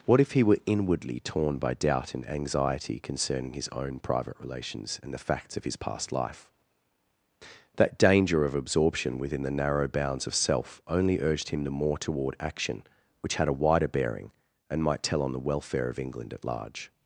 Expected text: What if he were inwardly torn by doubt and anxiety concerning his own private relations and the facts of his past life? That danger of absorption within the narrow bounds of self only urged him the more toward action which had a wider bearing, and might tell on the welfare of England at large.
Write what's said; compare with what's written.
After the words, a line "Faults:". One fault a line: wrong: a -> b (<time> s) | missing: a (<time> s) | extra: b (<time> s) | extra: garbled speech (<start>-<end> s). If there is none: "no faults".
What if he were inwardly torn by doubt and anxiety concerning his own private relations and the facts of his past life? That danger of absorption within the narrow bounds of self only urged him the more toward action which had a wider bearing, and might tell on the welfare of England at large.
Faults:
no faults